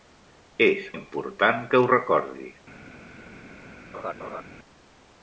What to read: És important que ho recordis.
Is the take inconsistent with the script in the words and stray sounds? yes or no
yes